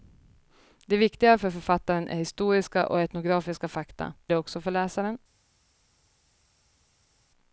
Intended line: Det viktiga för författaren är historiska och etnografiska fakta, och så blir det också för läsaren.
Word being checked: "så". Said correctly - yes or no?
no